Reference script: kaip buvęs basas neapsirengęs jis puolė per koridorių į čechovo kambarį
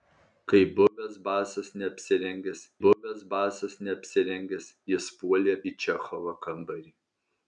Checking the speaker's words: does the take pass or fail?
fail